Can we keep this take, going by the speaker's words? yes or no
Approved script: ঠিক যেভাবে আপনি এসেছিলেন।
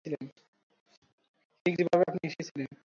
yes